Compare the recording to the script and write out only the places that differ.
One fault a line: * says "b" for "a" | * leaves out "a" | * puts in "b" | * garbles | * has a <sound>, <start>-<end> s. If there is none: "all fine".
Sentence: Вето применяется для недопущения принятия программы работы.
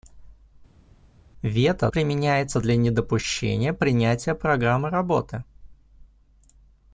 all fine